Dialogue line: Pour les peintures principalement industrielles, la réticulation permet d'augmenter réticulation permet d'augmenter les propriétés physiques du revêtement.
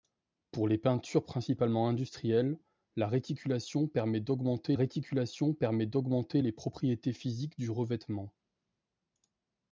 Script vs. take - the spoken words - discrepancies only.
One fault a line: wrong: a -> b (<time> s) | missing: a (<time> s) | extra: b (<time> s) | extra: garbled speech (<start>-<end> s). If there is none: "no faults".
no faults